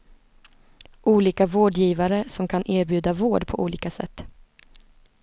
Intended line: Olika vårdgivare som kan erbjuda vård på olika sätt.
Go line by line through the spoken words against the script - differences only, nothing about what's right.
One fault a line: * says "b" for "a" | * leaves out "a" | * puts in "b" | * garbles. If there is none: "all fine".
all fine